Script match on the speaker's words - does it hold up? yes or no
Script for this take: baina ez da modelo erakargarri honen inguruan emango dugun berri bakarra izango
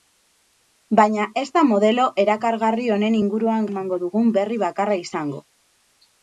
yes